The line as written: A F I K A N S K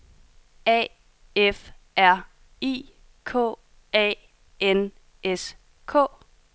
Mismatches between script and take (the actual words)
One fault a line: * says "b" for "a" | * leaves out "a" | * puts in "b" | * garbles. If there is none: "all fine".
* puts in "R"